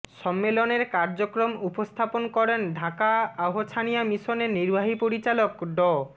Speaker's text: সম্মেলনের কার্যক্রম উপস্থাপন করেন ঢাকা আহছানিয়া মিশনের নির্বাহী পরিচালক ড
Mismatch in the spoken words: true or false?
false